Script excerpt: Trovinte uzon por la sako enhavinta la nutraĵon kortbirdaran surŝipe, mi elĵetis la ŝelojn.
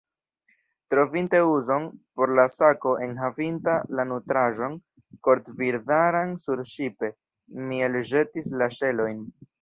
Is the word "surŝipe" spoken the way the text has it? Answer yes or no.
yes